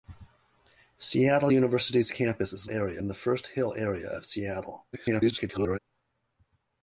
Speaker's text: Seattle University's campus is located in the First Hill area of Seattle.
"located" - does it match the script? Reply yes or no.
no